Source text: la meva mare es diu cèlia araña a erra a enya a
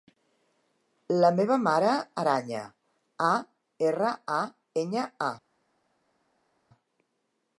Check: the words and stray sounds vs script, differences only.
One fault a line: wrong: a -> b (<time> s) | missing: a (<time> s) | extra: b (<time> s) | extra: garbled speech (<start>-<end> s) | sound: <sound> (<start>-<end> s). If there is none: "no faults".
missing: es diu cèlia (1.9 s)